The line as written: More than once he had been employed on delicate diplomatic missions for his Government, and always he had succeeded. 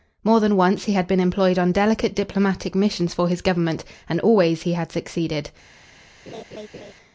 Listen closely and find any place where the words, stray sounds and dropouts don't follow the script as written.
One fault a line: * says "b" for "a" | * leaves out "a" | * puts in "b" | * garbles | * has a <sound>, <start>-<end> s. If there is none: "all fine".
* has a laugh, 6.3-6.9 s